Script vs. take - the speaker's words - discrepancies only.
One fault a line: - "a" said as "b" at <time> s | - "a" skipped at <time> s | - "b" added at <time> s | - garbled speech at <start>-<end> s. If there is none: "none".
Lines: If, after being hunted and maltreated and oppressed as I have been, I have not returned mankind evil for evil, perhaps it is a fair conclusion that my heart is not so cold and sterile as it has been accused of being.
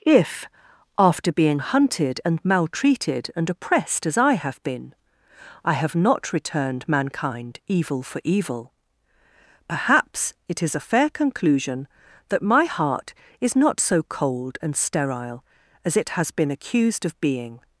none